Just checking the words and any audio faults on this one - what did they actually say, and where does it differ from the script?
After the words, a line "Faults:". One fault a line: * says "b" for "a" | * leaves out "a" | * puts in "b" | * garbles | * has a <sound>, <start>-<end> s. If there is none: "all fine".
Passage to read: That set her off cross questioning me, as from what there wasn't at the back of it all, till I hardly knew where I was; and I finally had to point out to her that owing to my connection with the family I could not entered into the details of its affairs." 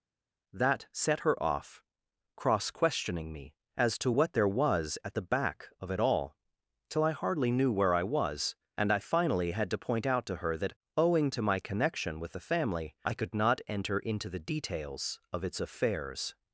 That set her off cross questioning me, as to what there was at the back of it all, till I hardly knew where I was; and I finally had to point out to her that owing to my connection with the family I could not enter into the details of its affairs."
Faults:
* says "to" for "from"
* says "was" for "wasn't"
* says "enter" for "entered"